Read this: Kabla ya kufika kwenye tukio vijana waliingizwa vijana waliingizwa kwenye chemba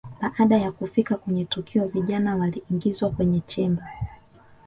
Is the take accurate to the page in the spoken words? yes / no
no